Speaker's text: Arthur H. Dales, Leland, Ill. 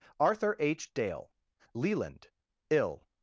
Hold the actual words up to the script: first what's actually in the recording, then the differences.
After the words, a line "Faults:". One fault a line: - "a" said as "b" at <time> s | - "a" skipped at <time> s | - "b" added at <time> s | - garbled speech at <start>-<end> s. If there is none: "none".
Arthur H. Dale, Leland, Ill.
Faults:
- "Dales" said as "Dale" at 0.9 s